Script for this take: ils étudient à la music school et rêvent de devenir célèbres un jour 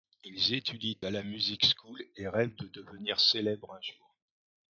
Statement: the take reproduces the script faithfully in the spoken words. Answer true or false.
true